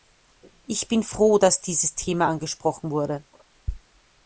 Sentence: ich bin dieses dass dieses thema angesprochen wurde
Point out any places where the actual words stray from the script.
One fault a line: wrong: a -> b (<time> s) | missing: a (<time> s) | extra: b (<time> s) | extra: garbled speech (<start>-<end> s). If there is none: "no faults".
wrong: dieses -> froh (1.0 s)